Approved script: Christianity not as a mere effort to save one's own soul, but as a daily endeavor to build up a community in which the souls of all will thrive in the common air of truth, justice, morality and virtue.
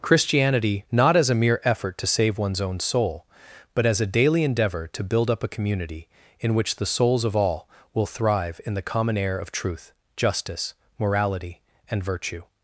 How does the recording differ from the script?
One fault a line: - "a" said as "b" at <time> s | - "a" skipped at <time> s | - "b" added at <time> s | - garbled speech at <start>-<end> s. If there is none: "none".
none